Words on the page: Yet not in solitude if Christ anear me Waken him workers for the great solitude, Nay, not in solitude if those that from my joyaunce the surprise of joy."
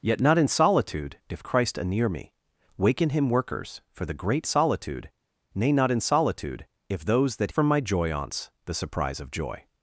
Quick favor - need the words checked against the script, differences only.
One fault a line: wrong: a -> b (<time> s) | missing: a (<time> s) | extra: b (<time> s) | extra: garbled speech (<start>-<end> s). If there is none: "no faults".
no faults